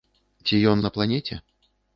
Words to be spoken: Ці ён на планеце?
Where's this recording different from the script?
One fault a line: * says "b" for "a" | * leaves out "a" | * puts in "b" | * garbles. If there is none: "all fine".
all fine